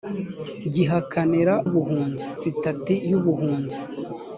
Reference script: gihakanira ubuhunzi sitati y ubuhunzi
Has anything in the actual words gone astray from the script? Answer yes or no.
no